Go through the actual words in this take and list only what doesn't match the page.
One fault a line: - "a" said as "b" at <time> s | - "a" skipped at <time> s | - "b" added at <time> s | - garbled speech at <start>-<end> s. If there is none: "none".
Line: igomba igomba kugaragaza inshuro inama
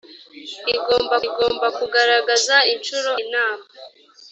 none